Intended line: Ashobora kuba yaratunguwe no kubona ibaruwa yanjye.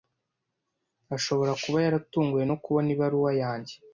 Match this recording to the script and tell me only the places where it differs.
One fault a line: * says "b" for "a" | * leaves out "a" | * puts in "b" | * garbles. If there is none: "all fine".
all fine